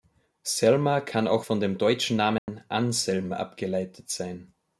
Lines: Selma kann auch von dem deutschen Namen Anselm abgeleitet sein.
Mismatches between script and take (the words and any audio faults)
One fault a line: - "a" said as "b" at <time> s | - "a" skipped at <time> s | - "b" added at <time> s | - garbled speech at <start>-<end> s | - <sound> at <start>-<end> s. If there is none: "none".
- dropout at 2.4-2.5 s